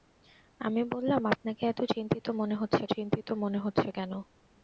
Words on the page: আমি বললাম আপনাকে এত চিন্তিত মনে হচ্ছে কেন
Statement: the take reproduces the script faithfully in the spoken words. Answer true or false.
false